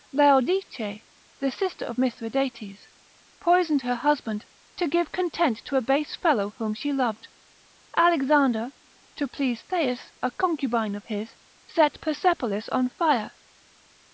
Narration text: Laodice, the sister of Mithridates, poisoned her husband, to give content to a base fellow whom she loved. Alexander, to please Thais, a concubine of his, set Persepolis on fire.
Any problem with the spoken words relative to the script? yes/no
no